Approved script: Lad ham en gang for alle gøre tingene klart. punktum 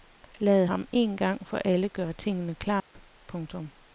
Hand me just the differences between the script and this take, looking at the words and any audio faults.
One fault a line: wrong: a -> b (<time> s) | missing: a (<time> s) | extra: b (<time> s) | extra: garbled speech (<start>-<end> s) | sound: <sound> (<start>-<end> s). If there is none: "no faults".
sound: dropout (2.8-2.9 s)